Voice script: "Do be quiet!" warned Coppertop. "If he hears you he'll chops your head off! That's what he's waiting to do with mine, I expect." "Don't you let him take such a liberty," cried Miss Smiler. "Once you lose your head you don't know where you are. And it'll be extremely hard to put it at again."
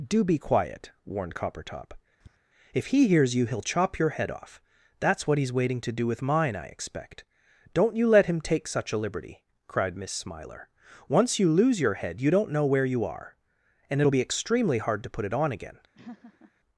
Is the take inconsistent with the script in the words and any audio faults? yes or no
yes